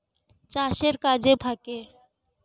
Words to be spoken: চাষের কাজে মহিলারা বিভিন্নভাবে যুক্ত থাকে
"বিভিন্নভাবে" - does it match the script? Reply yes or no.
no